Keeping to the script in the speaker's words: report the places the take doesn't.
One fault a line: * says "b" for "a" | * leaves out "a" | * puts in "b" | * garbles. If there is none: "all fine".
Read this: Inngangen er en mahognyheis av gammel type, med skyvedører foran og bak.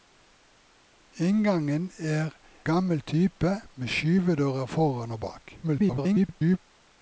* leaves out "en mahognyheis av"
* garbles